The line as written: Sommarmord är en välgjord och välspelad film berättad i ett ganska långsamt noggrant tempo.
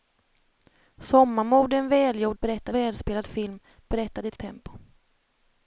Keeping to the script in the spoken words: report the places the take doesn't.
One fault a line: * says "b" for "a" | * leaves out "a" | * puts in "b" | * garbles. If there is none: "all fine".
* says "berättad" for "och"
* leaves out "ganska långsamt noggrant"